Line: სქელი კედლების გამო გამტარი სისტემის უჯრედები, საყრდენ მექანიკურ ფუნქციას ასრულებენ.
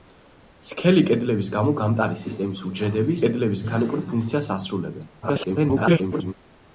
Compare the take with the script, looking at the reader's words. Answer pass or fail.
fail